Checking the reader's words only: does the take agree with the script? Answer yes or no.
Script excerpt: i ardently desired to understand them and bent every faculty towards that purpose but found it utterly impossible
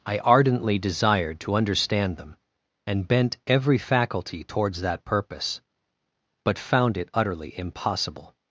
yes